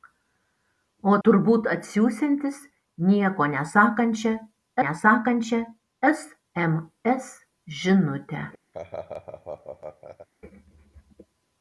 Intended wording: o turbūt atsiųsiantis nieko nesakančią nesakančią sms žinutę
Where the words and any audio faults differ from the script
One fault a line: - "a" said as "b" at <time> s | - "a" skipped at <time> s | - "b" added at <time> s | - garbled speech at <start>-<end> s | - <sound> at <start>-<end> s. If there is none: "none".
- laugh at 8.7-10.3 s